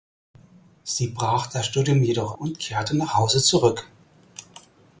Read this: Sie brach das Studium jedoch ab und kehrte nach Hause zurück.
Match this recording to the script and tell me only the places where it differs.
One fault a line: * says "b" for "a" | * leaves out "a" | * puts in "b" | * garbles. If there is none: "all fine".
* leaves out "ab"